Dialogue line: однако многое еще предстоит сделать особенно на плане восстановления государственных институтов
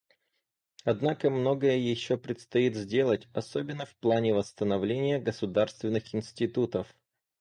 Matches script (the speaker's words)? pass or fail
fail